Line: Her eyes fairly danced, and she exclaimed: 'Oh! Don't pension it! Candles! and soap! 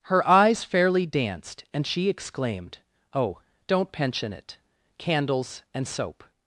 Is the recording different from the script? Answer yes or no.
no